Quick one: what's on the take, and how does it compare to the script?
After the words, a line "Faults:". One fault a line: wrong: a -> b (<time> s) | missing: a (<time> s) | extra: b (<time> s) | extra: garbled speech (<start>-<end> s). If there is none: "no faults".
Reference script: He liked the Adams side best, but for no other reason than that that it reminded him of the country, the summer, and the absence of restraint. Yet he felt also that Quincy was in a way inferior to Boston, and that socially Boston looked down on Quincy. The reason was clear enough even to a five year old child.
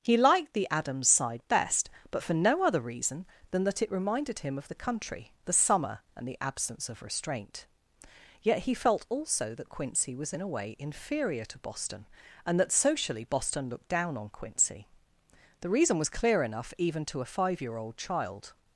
He liked the Adams side best, but for no other reason than that it reminded him of the country, the summer, and the absence of restraint. Yet he felt also that Quincy was in a way inferior to Boston, and that socially Boston looked down on Quincy. The reason was clear enough even to a five year old child.
Faults:
missing: that (3.8 s)